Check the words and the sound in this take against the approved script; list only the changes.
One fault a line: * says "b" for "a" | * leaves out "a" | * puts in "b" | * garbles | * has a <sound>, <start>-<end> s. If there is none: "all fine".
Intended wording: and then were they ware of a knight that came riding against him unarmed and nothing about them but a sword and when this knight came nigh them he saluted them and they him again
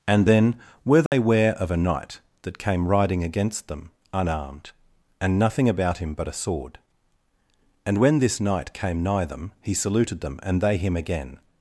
* has a dropout, 1.1-1.1 s
* says "them" for "him"
* says "him" for "them"